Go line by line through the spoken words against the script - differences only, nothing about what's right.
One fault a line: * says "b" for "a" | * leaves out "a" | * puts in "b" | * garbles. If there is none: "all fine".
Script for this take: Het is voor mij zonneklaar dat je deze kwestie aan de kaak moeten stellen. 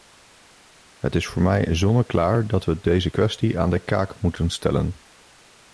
* says "we" for "je"